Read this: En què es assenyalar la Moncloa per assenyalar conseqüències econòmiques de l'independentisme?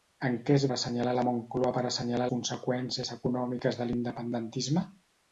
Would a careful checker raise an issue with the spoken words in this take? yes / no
no